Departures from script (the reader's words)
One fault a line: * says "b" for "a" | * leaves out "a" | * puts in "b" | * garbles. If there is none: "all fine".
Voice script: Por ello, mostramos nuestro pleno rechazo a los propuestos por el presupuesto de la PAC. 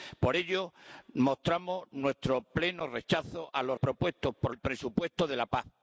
all fine